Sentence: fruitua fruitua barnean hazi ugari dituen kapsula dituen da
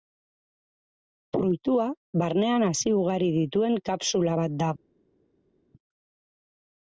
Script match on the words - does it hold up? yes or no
no